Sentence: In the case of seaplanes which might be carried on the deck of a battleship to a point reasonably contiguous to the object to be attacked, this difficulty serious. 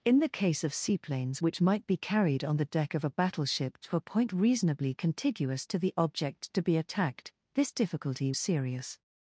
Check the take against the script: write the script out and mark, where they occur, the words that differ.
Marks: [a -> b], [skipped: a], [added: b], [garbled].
In the case of seaplanes which might be carried on the deck of a battleship to a point reasonably contiguous to the object to be attacked, this difficulty serious.